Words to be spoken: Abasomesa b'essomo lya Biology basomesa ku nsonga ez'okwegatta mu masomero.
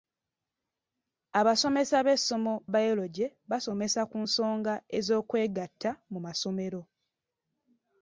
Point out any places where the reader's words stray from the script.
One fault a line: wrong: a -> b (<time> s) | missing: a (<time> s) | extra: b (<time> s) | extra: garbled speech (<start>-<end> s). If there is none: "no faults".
missing: lya (2.5 s)